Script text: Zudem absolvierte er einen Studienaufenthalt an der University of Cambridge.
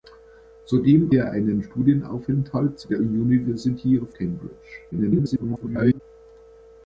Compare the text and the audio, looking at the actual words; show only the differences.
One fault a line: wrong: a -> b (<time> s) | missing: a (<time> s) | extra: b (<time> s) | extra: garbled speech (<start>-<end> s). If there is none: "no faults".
missing: absolvierte (1.1 s)
missing: an (2.9 s)
extra: garbled speech (4.9-6.0 s)